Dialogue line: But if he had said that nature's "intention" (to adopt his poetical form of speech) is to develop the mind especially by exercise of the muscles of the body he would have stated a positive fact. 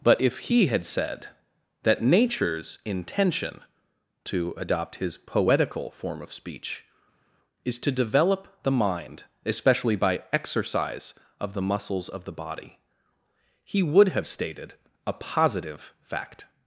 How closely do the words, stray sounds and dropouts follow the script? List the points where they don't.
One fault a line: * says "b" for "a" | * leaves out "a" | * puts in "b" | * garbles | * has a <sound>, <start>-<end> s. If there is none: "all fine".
all fine